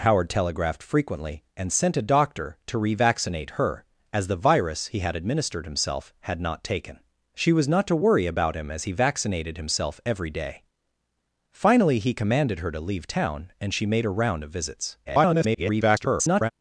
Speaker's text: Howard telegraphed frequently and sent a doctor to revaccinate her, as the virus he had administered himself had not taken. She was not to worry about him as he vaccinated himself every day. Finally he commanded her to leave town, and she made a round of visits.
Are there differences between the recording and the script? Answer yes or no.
yes